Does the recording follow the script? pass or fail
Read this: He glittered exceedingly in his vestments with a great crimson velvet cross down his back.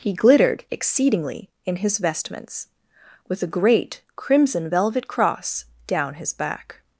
pass